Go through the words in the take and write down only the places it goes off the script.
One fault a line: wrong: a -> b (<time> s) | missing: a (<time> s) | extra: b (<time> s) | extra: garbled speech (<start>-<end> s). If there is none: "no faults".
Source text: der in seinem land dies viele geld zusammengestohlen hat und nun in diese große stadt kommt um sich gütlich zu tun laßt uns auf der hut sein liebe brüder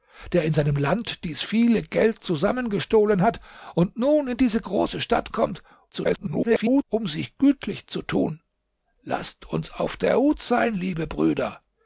extra: garbled speech (5.9-6.8 s)